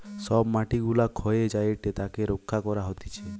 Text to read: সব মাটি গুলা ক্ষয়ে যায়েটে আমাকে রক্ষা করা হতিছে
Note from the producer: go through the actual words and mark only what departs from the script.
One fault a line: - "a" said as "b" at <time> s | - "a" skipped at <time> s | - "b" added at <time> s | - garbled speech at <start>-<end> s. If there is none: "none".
- "আমাকে" said as "তাকে" at 1.9 s